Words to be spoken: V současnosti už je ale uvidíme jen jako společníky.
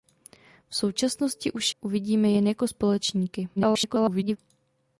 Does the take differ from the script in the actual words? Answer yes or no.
yes